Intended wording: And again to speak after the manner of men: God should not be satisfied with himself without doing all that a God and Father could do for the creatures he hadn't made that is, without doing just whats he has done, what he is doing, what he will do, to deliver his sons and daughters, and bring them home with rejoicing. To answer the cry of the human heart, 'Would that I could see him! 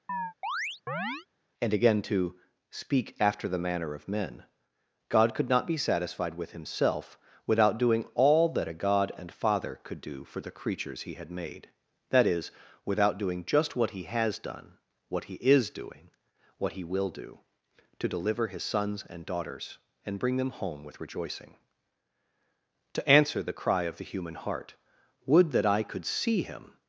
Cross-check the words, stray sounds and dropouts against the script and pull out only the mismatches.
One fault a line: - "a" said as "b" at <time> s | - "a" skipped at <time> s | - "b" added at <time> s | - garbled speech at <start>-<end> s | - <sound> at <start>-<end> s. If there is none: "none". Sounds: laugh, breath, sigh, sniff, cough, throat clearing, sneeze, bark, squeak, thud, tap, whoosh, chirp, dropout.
- chirp at 0.1-1.3 s
- "should" said as "could" at 5.3 s
- "hadn't" said as "had" at 11.1 s
- "whats" said as "what" at 13.7 s